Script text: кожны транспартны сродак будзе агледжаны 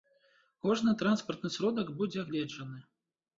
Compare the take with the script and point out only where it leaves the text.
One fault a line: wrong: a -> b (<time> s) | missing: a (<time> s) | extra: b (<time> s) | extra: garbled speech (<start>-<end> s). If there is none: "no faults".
no faults